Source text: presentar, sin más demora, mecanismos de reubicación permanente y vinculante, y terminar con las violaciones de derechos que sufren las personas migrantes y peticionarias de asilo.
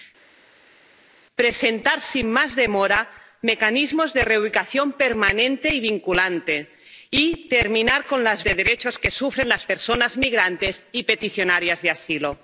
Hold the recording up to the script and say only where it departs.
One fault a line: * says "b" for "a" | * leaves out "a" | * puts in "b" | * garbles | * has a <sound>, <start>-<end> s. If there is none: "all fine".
* leaves out "violaciones"